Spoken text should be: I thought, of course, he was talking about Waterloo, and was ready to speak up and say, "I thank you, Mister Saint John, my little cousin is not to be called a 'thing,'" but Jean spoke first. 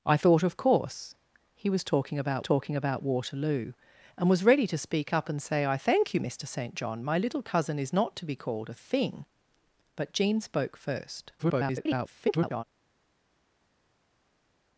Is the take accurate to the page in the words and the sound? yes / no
no